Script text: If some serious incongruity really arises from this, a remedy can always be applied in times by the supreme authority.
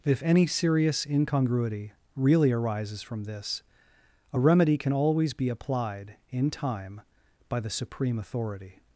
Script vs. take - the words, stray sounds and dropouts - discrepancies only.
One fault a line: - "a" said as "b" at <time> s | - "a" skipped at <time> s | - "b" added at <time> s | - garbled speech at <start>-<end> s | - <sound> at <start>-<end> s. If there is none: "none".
- "some" said as "any" at 0.2 s
- "times" said as "time" at 6.5 s